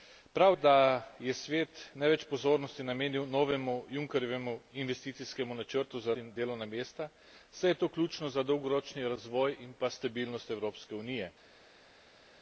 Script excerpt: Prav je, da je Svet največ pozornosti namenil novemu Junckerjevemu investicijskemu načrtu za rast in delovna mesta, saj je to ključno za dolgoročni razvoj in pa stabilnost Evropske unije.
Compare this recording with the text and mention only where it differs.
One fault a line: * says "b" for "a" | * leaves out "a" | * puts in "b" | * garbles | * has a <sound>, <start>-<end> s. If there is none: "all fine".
* leaves out "je"
* leaves out "rast"